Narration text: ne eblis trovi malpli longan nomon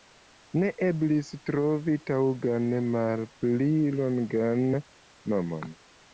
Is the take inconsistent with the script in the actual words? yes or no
yes